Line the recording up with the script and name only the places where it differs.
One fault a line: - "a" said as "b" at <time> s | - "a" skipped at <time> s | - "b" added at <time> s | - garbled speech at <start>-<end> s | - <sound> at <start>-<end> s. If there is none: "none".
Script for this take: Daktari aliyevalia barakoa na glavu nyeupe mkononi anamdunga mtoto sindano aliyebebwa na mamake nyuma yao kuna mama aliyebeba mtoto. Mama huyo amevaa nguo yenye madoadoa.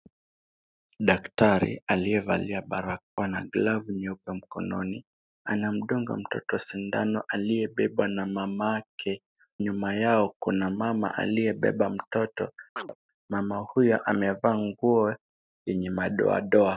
- dropout at 3.0-3.2 s
- chirp at 12.8-13.0 s